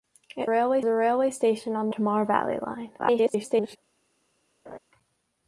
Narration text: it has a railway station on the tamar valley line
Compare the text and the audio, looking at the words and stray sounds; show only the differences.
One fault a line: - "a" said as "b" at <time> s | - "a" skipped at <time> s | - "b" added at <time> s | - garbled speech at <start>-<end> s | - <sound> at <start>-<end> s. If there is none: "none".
- "has" said as "railway" at 0.4 s
- "the" skipped at 1.9 s
- garbled speech at 3.0-3.8 s
- laugh at 4.7-4.8 s